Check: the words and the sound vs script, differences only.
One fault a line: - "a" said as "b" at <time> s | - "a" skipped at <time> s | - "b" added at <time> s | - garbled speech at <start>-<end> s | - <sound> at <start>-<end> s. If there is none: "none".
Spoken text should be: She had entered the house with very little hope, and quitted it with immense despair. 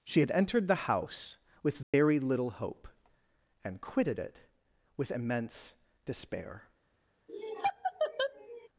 - dropout at 1.8-1.9 s
- laugh at 7.3-8.7 s